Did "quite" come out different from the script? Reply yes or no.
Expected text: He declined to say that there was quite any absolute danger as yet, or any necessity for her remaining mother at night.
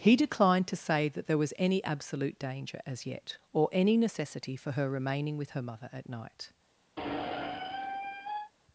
yes